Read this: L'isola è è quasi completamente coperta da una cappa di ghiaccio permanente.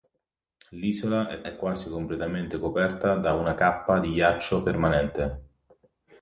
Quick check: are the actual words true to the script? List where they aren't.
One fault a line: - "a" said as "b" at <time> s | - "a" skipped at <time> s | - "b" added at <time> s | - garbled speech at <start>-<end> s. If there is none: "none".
none